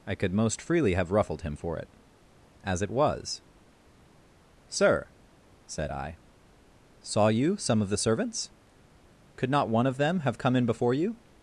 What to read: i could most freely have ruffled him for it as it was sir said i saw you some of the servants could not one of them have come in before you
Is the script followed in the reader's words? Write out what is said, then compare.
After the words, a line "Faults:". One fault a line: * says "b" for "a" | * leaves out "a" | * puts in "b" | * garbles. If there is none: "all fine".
i could most freely have ruffled him for it as it was sir said i saw you some of the servants could not one of them have come in before you
Faults:
all fine